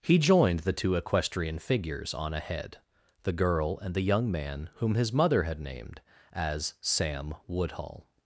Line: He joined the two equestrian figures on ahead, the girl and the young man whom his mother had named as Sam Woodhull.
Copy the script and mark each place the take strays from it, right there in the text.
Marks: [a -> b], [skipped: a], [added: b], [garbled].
He joined the two equestrian figures on ahead, the girl and the young man whom his mother had named as Sam Woodhull.